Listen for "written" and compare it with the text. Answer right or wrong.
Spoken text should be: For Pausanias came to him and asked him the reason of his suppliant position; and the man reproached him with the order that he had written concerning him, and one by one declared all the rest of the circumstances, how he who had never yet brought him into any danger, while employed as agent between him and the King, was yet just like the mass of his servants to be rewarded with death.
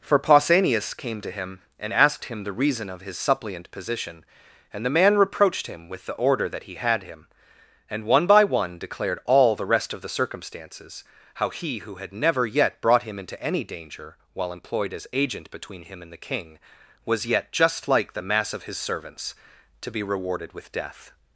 wrong